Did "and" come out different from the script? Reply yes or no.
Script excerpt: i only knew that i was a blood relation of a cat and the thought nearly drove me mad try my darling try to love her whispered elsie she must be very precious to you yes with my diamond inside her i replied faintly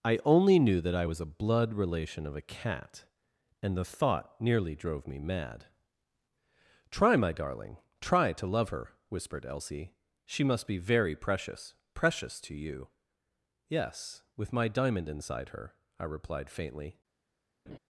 no